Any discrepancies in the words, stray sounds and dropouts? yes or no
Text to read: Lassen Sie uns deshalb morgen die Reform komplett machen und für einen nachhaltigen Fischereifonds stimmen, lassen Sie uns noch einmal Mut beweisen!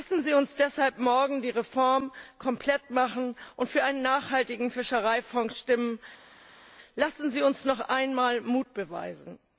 no